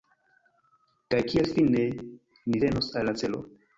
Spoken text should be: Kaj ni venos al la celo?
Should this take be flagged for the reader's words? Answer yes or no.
yes